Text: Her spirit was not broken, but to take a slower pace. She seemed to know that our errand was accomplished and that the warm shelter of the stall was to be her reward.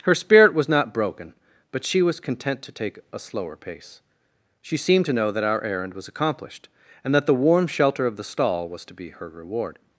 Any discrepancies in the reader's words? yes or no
yes